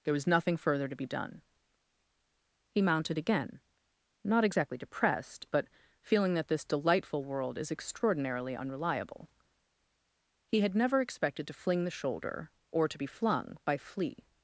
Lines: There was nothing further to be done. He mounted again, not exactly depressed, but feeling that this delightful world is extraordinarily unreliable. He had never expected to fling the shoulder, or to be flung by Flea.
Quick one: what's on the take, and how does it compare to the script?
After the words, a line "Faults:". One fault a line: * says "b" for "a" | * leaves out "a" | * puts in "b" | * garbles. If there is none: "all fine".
There was nothing further to be done. He mounted again, not exactly depressed, but feeling that this delightful world is extraordinarily unreliable. He had never expected to fling the shoulder, or to be flung by Flea.
Faults:
all fine